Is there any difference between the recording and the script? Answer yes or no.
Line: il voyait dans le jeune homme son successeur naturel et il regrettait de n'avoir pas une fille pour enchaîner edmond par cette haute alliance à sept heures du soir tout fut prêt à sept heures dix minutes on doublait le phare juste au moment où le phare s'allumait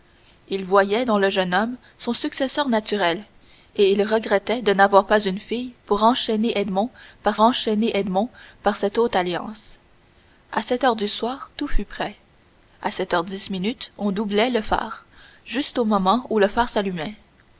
yes